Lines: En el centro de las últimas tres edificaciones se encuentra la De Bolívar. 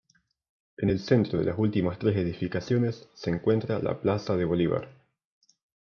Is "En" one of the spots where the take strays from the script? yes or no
no